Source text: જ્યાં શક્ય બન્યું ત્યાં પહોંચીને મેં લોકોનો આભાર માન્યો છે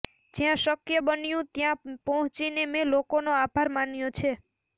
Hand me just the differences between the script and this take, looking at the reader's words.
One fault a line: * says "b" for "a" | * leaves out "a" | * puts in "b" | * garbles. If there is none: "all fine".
all fine